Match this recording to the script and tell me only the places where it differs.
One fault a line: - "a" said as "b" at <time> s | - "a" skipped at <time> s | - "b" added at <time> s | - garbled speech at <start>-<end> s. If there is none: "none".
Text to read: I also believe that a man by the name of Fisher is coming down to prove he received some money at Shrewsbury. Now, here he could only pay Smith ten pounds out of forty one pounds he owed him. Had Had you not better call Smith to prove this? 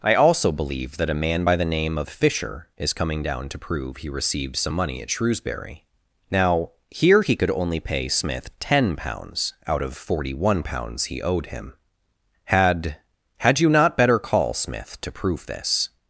none